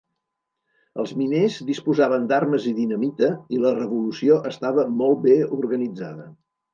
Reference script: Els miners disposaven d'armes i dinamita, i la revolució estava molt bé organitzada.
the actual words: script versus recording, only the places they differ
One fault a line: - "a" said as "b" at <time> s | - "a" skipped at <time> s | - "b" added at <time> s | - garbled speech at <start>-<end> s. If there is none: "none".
none